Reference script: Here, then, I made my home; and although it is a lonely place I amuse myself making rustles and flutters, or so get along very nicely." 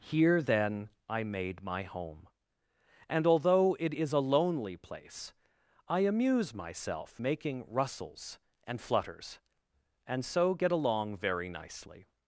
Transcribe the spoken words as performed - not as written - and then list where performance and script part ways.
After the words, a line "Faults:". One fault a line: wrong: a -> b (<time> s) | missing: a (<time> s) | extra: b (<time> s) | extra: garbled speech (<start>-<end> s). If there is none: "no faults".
Here, then, I made my home; and although it is a lonely place I amuse myself making rustles and flutters, and so get along very nicely."
Faults:
wrong: or -> and (10.1 s)